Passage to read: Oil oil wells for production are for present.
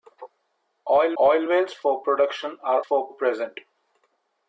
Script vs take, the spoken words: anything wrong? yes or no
no